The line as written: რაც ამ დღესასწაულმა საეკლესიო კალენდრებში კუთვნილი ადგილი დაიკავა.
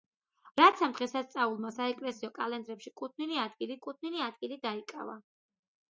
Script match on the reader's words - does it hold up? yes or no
no